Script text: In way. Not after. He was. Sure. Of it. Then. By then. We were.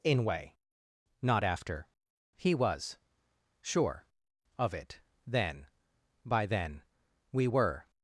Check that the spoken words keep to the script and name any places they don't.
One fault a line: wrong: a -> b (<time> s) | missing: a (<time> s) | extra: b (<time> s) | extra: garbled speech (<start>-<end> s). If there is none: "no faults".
no faults